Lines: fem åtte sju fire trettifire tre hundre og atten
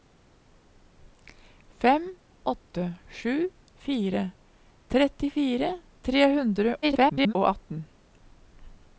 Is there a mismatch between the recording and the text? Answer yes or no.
yes